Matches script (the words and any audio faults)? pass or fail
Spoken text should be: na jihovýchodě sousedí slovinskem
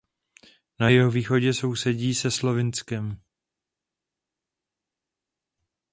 fail